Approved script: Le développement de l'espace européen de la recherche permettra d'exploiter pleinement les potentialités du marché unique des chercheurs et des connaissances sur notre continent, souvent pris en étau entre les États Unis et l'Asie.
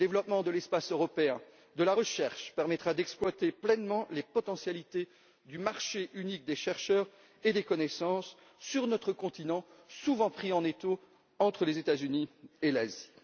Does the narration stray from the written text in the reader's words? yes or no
no